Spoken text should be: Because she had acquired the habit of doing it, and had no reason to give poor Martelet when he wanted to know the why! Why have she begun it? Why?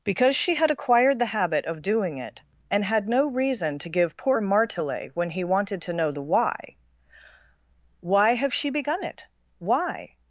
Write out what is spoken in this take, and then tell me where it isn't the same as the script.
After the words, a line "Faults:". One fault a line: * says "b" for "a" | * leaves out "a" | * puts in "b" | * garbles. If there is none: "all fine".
Because she had acquired the habit of doing it, and had no reason to give poor Martelet when he wanted to know the why! Why have she begun it? Why?
Faults:
all fine